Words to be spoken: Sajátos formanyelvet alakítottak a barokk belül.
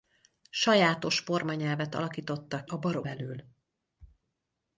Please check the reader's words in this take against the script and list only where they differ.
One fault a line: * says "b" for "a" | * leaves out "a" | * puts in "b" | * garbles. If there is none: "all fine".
all fine